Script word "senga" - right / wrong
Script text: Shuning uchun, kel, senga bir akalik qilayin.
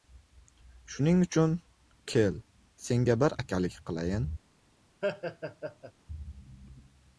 right